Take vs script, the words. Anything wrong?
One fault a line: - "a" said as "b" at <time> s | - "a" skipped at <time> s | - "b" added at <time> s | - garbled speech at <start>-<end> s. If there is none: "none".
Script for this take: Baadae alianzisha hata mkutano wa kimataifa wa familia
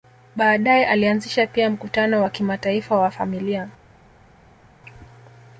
- "hata" said as "pia" at 1.5 s